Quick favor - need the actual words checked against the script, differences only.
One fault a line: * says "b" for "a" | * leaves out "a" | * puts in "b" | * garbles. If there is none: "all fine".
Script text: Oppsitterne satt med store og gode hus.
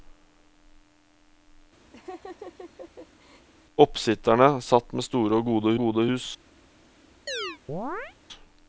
* puts in "gode"